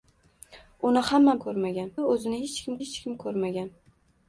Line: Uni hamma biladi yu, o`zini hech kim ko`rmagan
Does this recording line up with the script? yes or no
no